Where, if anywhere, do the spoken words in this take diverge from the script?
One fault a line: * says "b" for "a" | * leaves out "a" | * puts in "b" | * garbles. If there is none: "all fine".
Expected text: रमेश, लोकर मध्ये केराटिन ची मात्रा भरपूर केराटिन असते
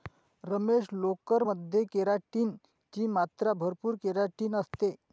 all fine